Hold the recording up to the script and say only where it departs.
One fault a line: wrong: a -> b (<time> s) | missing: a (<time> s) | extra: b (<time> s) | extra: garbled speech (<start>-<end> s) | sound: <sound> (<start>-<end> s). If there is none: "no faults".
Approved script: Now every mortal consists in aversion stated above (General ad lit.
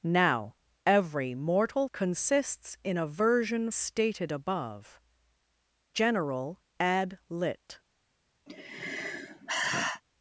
sound: sigh (8.5-10.0 s)